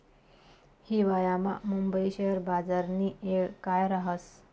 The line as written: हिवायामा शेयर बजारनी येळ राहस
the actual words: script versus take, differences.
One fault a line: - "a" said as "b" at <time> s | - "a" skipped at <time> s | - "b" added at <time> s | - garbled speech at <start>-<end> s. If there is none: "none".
- "मुंबई" added at 1.6 s
- "काय" added at 3.6 s